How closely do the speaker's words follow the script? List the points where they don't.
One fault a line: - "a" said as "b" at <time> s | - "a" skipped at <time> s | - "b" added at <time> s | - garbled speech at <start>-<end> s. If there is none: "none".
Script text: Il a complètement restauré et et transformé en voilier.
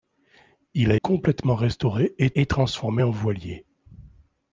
none